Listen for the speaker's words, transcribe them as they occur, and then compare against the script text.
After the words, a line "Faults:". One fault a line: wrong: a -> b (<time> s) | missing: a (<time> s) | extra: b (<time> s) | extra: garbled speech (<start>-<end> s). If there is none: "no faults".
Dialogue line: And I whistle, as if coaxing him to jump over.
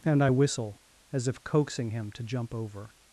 And I whistle, as if coaxing him to jump over.
Faults:
no faults